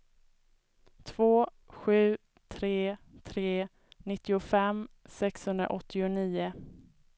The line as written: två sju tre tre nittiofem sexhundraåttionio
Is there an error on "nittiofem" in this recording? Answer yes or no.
no